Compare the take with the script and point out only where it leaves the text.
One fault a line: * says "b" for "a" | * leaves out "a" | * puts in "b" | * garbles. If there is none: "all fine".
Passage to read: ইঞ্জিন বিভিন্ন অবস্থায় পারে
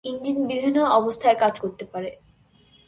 * puts in "কাজ করতে"